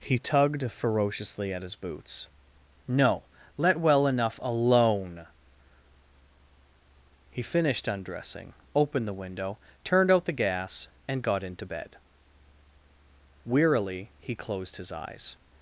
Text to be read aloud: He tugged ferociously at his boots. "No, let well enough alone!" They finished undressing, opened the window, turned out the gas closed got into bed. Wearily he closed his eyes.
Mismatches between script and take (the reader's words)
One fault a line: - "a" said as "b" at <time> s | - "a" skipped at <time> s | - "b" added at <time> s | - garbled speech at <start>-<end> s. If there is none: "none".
- "They" said as "He" at 7.3 s
- "closed" said as "and" at 11.1 s